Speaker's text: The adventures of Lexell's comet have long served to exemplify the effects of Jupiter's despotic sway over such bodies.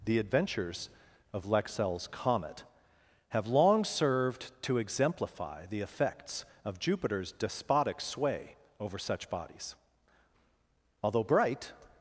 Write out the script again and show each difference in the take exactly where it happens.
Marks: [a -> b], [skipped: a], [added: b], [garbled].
The adventures of Lexell's comet have long served to exemplify the effects of Jupiter's despotic sway over such bodies. [added: Although bright]